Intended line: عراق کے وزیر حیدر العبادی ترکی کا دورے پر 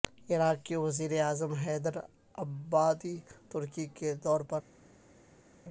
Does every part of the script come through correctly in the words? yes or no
no